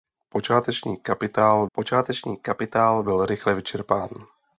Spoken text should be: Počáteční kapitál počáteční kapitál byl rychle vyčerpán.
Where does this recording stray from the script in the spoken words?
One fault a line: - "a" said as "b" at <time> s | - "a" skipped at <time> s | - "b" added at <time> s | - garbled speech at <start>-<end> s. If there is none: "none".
none